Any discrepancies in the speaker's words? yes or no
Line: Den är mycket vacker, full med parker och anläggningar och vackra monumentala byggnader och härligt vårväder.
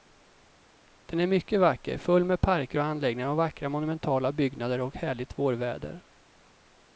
no